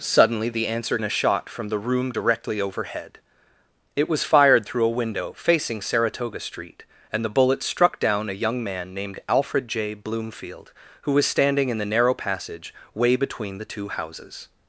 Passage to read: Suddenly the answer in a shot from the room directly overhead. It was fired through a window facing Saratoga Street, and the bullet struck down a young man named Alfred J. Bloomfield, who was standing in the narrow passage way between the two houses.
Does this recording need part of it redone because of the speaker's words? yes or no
no